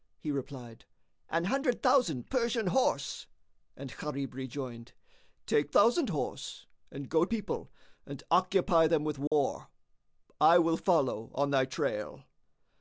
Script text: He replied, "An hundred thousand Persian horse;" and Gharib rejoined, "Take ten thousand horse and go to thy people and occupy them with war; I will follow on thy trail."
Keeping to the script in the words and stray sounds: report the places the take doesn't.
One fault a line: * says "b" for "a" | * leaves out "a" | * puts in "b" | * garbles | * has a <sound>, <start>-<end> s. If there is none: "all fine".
* leaves out "ten"
* leaves out "to thy"
* has a dropout, 9.3-9.3 s